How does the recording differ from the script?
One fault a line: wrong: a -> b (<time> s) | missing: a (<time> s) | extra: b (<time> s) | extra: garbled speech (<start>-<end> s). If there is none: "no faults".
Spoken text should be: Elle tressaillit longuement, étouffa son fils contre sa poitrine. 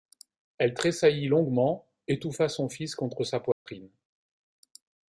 no faults